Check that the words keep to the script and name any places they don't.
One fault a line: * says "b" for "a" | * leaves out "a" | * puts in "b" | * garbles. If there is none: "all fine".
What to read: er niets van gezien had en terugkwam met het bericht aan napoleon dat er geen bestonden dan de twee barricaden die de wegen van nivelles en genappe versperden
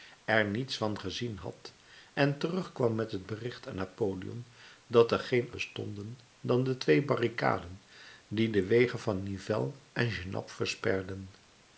all fine